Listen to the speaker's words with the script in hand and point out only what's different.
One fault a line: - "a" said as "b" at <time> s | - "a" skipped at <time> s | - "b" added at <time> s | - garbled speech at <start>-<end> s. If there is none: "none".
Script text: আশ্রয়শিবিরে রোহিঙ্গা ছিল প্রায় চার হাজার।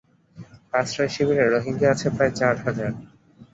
- "ছিল" said as "আছে" at 1.9 s